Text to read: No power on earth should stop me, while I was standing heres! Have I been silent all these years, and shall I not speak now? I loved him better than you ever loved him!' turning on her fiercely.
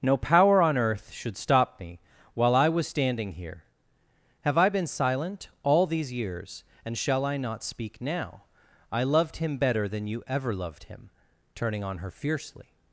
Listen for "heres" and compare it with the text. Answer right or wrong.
wrong